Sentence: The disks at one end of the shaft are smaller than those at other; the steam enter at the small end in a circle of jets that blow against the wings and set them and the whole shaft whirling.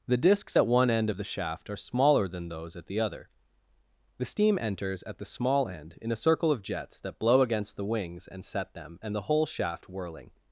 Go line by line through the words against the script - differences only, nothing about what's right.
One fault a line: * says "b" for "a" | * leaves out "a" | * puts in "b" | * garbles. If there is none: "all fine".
* puts in "the"
* says "enters" for "enter"